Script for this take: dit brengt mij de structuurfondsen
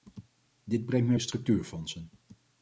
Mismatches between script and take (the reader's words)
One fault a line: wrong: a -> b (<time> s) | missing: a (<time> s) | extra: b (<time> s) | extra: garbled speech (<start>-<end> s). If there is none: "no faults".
no faults